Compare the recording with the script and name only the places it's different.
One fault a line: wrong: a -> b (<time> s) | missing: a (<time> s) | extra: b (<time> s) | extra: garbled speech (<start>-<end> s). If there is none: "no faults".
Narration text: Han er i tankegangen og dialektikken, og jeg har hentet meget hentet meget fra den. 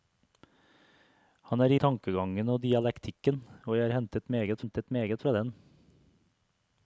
no faults